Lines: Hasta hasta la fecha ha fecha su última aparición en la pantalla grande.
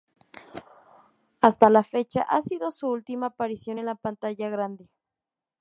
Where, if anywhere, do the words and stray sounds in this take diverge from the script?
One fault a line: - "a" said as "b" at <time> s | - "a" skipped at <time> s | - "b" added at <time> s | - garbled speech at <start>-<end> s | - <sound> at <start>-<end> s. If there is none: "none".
- "hasta" skipped at 1.7 s
- "fecha" said as "sido" at 2.4 s